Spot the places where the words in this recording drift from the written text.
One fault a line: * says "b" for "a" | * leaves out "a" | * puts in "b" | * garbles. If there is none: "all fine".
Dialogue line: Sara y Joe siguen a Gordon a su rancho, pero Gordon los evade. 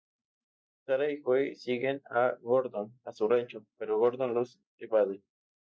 all fine